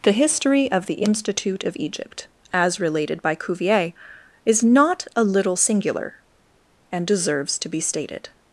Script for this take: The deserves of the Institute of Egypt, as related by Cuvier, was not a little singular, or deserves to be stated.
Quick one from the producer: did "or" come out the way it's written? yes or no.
no